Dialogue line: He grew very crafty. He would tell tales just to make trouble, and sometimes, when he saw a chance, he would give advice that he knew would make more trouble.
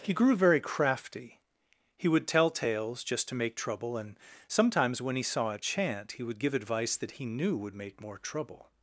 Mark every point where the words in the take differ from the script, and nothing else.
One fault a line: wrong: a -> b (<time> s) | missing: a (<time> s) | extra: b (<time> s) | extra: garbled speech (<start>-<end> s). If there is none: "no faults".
wrong: chance -> chant (5.6 s)